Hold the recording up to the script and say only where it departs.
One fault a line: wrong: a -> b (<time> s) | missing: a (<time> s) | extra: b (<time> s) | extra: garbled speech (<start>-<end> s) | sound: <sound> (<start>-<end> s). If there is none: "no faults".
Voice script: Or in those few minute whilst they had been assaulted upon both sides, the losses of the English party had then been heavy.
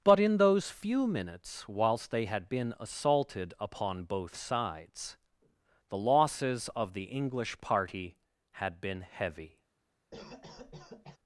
wrong: Or -> But (0.0 s)
wrong: minute -> minutes (1.1 s)
missing: then (8.8 s)
sound: cough (10.1-11.2 s)